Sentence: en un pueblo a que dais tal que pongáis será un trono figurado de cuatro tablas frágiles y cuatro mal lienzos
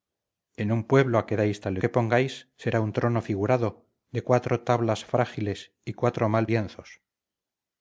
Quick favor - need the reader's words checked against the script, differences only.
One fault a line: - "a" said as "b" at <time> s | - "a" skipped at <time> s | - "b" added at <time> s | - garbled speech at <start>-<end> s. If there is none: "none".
none